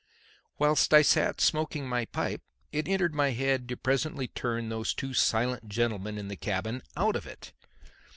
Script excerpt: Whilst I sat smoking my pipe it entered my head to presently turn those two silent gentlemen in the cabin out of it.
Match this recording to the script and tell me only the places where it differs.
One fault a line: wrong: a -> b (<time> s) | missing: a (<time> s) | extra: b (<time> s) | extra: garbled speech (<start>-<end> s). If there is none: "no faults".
no faults